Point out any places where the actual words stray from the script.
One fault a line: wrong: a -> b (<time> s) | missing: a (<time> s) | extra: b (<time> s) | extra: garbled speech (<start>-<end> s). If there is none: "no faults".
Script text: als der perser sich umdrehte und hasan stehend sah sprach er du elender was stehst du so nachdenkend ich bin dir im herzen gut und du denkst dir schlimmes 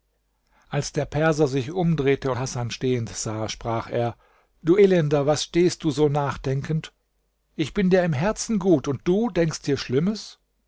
missing: und (2.3 s)